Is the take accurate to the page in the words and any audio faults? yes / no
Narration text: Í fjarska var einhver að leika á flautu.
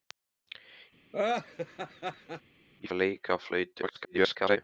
no